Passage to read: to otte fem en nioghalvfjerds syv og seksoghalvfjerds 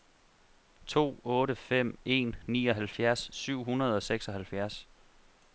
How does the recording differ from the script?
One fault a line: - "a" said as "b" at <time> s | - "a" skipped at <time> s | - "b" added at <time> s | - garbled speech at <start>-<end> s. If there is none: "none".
- "hundrede" added at 3.6 s